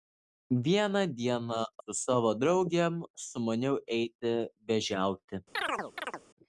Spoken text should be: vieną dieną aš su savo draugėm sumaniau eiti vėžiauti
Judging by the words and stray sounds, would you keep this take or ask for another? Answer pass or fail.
fail